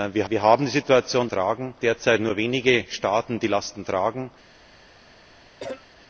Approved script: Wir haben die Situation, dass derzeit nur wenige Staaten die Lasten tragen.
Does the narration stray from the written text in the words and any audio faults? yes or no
yes